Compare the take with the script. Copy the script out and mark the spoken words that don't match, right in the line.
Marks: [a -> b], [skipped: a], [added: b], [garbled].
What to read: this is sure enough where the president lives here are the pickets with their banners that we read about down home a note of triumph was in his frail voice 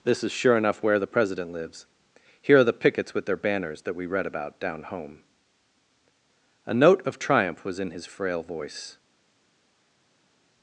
this is sure enough where the president lives here are the pickets with their banners that we read about down home a note of triumph was in his frail voice